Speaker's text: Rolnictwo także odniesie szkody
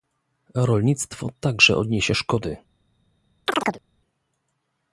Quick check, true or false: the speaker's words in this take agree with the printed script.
true